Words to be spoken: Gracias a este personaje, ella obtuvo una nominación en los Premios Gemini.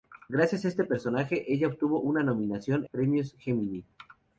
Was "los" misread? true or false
true